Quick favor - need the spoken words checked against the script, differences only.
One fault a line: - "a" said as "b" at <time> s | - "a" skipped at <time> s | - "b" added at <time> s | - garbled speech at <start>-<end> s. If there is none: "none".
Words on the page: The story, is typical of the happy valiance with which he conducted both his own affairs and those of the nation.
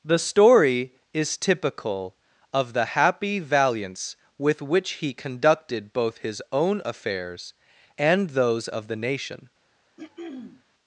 none